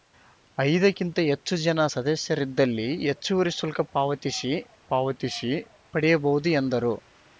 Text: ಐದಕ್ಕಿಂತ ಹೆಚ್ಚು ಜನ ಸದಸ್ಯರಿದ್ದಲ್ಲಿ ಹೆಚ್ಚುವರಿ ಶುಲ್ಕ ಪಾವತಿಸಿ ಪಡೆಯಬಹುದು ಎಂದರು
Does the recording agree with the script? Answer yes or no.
no